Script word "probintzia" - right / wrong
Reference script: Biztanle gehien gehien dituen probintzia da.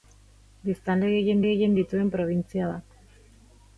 right